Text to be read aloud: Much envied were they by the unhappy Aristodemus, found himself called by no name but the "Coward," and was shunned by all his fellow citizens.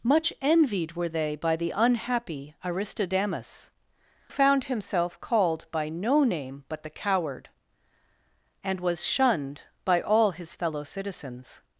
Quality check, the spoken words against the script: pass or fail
pass